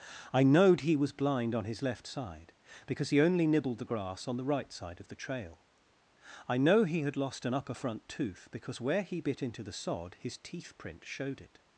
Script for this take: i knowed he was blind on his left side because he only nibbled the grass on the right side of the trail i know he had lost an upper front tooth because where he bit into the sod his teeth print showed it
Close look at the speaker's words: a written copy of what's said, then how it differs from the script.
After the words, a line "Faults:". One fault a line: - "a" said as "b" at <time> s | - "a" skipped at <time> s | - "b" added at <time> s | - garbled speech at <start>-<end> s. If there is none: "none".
i knowed he was blind on his left side because he only nibbled the grass on the right side of the trail i know he had lost an upper front tooth because where he bit into the sod his teeth print showed it
Faults:
none